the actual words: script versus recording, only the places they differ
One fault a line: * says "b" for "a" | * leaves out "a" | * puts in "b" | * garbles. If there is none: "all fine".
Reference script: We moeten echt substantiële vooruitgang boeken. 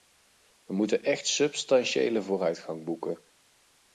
all fine